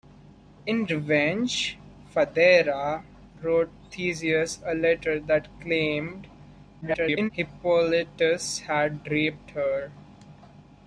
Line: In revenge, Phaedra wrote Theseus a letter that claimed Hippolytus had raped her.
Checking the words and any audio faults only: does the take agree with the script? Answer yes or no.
no